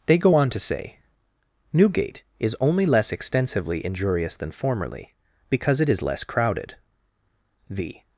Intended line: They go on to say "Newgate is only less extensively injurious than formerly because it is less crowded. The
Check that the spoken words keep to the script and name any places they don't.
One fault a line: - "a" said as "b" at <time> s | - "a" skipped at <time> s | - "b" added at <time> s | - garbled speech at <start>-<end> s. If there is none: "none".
none